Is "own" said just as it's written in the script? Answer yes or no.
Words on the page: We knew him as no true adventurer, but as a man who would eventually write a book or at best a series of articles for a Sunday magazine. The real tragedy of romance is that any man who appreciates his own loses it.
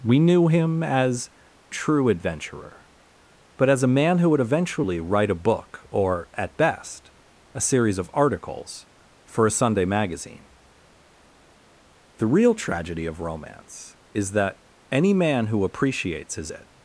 no